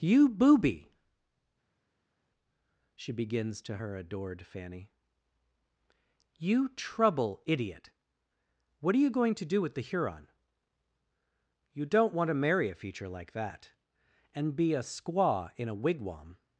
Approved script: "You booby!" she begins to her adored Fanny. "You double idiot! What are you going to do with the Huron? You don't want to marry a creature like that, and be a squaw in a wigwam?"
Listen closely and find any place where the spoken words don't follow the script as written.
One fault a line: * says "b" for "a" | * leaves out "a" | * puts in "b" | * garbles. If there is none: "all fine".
* says "trouble" for "double"
* says "feature" for "creature"